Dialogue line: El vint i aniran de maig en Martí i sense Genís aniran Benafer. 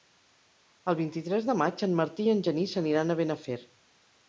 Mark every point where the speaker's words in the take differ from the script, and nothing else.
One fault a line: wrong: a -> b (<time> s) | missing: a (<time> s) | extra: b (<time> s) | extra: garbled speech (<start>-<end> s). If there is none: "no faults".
wrong: aniran -> tres (1.3 s)
wrong: sense -> en (2.4 s)
extra: a (3.1 s)